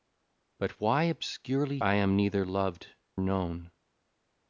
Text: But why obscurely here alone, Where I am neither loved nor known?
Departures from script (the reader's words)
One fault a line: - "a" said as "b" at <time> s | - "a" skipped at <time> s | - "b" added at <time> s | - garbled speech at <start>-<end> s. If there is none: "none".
- "here alone Where" skipped at 1.8 s
- "nor" skipped at 2.9 s